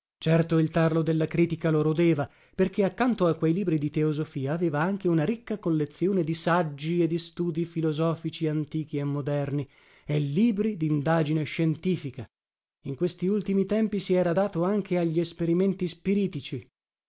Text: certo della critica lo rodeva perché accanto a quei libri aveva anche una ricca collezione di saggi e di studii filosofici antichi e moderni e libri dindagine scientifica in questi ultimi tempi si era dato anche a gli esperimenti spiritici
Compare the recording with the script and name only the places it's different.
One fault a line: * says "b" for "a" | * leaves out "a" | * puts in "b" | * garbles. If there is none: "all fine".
* puts in "il tarlo"
* puts in "di teosofia"